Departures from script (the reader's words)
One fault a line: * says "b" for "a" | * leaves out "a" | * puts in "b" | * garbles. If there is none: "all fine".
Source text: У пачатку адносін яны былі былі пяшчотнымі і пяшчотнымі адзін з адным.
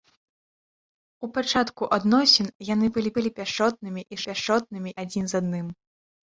all fine